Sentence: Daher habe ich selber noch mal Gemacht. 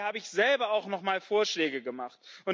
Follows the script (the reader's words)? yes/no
no